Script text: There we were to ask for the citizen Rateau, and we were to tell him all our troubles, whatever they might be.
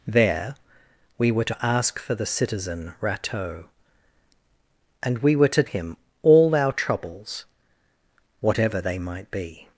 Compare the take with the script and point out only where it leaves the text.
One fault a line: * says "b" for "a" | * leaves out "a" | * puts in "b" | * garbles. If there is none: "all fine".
* leaves out "tell"